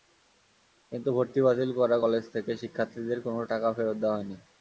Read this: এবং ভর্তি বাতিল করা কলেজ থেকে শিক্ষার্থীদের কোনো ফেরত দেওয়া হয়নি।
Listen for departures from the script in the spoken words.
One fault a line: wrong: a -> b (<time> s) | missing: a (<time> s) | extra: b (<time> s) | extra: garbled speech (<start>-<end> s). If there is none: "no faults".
wrong: এবং -> কিন্তু (0.9 s)
extra: টাকা (3.5 s)